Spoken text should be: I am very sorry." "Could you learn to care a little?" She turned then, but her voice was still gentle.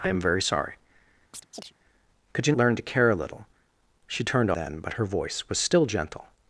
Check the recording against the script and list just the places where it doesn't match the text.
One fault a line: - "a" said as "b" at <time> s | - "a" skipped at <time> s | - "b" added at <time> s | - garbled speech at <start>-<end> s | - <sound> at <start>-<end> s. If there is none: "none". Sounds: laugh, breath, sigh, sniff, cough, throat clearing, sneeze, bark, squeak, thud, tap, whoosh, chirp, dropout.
- chirp at 1.3-1.7 s